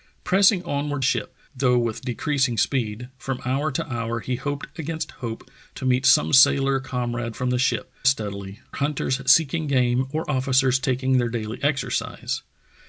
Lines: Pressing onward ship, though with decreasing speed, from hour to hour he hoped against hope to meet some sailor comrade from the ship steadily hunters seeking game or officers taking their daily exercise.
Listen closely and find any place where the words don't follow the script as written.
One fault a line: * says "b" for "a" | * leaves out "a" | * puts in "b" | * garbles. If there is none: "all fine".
all fine